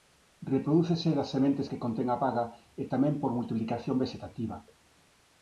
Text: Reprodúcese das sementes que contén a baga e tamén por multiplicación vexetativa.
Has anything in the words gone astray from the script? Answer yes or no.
no